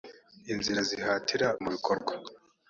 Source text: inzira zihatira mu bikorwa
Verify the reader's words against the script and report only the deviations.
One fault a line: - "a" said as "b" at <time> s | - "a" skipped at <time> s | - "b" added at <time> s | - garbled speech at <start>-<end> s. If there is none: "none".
none